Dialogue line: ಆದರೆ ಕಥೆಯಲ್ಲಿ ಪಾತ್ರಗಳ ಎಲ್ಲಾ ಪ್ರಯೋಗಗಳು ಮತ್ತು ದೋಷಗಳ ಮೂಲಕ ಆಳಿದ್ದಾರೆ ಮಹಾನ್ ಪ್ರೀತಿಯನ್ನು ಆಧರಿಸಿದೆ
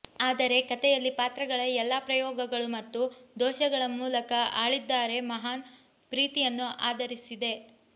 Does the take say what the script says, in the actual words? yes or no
yes